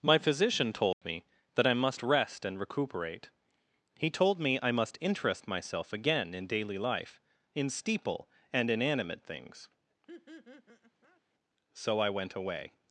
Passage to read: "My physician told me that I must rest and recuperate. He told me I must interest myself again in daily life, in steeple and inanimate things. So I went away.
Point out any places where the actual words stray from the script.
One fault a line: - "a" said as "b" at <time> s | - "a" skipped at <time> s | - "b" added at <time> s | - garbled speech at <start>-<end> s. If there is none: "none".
none